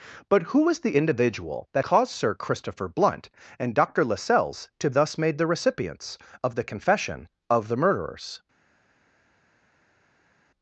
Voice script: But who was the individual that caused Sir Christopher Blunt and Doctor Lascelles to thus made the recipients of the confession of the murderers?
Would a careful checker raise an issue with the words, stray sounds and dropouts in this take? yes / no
no